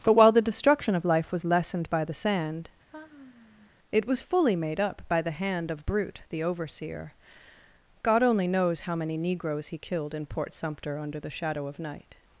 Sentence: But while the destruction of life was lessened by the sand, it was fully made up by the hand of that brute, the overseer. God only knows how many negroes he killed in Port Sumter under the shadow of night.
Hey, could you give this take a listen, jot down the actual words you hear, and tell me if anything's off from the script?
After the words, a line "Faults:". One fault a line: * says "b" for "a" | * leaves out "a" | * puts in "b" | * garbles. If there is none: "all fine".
But while the destruction of life was lessened by the sand, it was fully made up by the hand of brute, the overseer. God only knows how many negroes he killed in Port Sumter under the shadow of night.
Faults:
* leaves out "that"